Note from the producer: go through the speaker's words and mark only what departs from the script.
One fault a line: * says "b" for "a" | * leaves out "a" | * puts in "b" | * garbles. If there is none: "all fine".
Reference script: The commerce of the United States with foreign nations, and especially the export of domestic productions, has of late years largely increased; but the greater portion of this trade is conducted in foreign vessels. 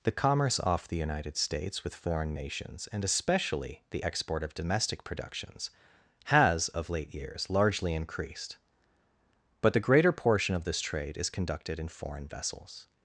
* says "off" for "of"